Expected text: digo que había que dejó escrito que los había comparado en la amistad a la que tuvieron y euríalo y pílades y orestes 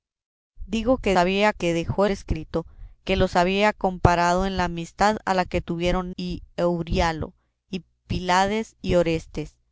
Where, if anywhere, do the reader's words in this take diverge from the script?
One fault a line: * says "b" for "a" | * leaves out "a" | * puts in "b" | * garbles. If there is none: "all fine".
all fine